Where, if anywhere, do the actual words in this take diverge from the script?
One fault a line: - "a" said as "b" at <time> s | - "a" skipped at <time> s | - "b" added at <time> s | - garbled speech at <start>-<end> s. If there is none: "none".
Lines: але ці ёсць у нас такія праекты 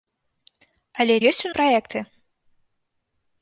- "ці" skipped at 1.2 s
- "нас такія" skipped at 1.5 s